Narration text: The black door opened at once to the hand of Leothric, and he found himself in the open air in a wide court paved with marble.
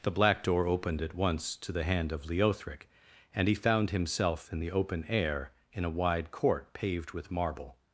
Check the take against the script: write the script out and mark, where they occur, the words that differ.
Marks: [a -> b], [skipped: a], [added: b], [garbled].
The black door opened at once to the hand of Leothric, and he found himself in the open air in a wide court paved with marble.